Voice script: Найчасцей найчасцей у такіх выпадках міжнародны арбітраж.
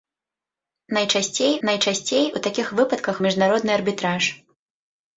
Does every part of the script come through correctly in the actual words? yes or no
yes